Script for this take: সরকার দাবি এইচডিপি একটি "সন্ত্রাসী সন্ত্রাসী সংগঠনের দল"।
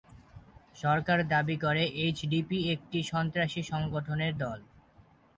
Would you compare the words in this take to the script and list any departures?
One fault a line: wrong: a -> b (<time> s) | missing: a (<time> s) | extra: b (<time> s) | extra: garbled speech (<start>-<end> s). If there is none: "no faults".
extra: করে (1.6 s)
missing: সন্ত্রাসী (3.6 s)